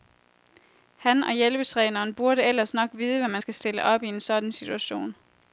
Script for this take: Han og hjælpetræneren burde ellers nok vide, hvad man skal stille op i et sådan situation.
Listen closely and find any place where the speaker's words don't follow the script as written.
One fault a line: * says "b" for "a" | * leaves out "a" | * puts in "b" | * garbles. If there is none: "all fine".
* says "en" for "et"